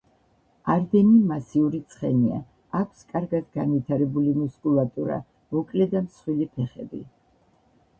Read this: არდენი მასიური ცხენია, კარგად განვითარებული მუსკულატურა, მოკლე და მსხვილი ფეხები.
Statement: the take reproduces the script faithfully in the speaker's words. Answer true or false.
false